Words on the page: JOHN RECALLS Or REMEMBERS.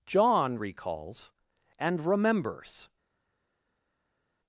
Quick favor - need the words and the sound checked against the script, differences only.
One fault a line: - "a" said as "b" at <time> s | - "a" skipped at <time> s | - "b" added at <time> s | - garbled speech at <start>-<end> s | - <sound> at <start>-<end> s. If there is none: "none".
- "Or" said as "AND" at 1.8 s